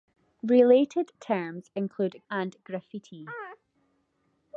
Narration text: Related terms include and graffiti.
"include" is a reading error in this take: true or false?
false